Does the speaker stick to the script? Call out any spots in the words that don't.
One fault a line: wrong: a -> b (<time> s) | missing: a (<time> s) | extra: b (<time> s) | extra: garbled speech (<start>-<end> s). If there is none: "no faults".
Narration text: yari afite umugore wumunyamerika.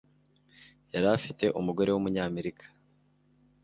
no faults